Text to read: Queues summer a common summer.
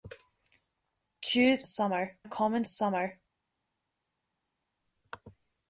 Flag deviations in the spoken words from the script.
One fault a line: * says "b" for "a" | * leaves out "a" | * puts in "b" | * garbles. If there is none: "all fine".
all fine